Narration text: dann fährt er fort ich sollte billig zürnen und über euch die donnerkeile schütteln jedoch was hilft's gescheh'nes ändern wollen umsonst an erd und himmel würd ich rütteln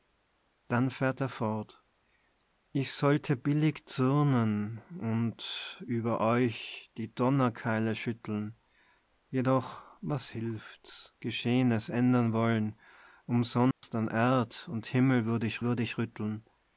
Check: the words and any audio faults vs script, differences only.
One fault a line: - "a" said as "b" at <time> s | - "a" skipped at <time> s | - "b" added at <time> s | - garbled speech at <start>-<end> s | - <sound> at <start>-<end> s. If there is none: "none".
- dropout at 13.7-13.8 s
- "würd ich" added at 15.6 s